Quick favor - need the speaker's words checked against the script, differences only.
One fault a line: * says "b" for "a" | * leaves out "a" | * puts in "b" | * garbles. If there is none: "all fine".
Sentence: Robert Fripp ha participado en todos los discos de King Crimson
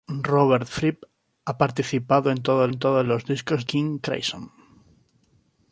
* puts in "en todos"
* leaves out "de"